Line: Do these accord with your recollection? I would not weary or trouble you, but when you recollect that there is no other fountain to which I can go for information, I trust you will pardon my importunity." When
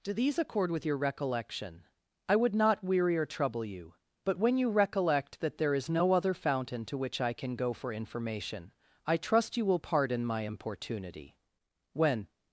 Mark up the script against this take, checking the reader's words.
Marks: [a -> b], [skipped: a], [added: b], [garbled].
Do these accord with your recollection? I would not weary or trouble you, but when you recollect that there is no other fountain to which I can go for information, I trust you will pardon my importunity." When